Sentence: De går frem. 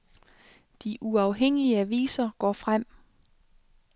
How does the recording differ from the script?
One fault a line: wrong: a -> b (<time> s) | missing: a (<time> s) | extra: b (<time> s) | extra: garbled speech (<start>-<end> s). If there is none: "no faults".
extra: uafhængige aviser (1.0 s)